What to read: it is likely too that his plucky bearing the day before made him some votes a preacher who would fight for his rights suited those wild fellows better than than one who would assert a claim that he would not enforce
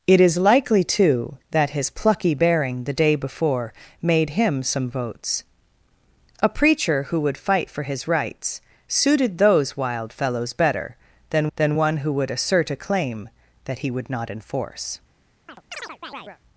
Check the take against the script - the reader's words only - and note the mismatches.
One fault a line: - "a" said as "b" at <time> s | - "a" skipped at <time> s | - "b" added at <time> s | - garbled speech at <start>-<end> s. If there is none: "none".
none